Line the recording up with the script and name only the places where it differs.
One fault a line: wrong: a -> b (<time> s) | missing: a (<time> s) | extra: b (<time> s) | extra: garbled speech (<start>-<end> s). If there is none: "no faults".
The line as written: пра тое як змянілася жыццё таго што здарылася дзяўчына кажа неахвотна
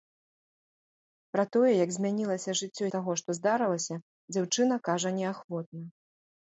no faults